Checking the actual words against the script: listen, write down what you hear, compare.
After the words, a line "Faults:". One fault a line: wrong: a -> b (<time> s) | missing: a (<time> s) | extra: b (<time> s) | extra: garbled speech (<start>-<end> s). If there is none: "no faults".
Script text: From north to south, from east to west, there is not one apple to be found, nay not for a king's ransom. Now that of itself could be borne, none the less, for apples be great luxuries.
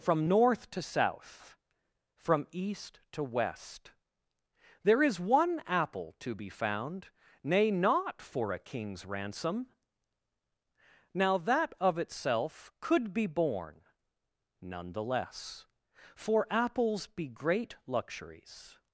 From north to south, from east to west, there is one apple to be found, nay not for a king's ransom. Now that of itself could be borne, none the less, for apples be great luxuries.
Faults:
missing: not (5.2 s)